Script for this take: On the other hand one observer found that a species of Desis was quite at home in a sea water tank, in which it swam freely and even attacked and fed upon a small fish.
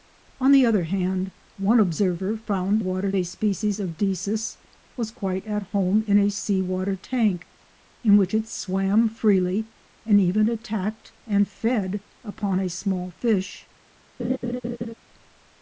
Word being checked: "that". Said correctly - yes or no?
no